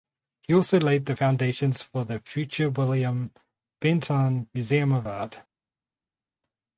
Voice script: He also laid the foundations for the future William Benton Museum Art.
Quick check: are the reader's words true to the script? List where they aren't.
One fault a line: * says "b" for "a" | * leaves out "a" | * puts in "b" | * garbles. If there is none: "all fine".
* puts in "of"